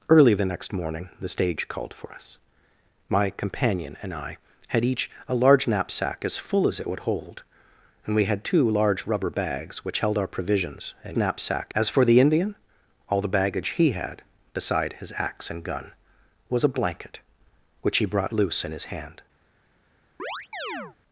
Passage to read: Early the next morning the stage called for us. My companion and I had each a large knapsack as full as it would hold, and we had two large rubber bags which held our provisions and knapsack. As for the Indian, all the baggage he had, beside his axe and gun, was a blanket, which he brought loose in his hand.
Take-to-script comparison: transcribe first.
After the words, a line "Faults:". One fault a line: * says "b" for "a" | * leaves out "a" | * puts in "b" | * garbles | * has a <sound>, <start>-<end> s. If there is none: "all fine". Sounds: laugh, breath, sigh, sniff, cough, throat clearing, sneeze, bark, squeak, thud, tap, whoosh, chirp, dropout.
Early the next morning the stage called for us. My companion and I had each a large knapsack as full as it would hold, and we had two large rubber bags which held our provisions and knapsack. As for the Indian, all the baggage he had, beside his axe and gun, was a blanket, which he brought loose in his hand.
Faults:
* has a chirp, 20.2-21.0 s